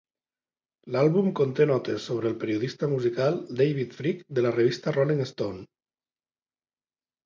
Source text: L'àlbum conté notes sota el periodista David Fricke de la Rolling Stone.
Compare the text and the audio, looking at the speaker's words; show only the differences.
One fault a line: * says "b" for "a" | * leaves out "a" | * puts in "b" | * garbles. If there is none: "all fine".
* says "sobre" for "sota"
* puts in "musical"
* puts in "revista"